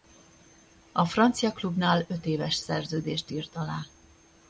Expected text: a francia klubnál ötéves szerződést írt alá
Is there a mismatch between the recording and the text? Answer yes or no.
no